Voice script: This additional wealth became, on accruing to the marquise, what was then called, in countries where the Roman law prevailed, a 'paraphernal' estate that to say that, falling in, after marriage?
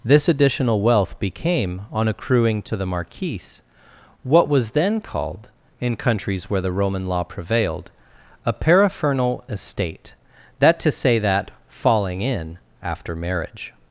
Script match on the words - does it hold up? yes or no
yes